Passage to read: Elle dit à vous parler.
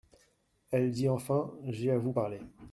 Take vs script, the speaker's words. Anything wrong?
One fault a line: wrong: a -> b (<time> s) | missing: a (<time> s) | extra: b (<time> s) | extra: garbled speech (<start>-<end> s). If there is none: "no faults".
extra: enfin J'ai (1.1 s)